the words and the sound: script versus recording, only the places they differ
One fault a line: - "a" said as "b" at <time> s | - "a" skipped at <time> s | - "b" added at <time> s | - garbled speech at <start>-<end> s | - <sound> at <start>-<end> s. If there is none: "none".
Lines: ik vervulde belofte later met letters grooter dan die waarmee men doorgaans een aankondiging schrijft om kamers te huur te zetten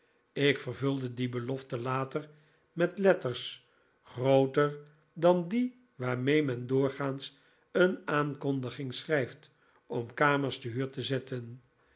- "die" added at 1.1 s